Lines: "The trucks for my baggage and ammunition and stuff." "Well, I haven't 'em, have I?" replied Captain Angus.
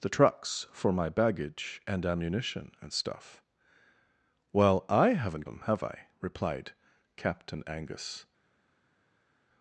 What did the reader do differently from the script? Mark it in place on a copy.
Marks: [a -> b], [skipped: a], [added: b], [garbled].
"The trucks for my baggage and ammunition and stuff." "Well, I haven't 'em, have I?" replied Captain Angus.